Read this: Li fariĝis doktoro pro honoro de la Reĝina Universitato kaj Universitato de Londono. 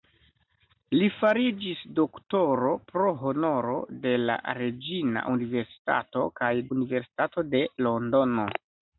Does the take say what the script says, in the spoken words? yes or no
yes